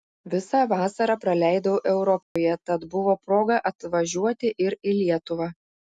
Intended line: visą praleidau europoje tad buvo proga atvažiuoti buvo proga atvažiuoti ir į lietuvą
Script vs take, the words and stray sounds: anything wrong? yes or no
yes